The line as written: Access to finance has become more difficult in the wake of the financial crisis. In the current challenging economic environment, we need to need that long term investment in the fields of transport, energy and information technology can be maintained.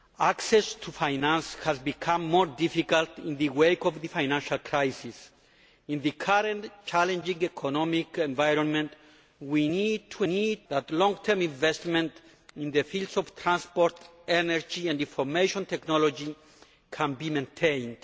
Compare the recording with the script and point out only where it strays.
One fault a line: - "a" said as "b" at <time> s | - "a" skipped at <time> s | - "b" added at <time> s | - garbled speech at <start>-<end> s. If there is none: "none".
none